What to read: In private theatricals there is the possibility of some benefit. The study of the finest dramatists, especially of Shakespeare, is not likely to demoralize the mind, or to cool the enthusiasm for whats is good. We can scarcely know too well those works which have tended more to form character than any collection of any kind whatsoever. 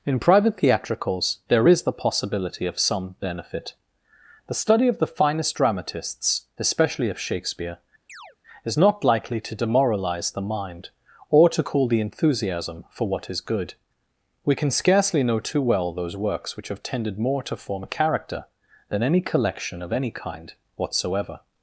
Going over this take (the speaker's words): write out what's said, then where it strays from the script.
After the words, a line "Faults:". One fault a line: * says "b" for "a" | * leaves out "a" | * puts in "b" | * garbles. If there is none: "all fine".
In private theatricals there is the possibility of some benefit. The study of the finest dramatists, especially of Shakespeare, is not likely to demoralize the mind, or to cool the enthusiasm for what is good. We can scarcely know too well those works which have tended more to form character than any collection of any kind whatsoever.
Faults:
* says "what" for "whats"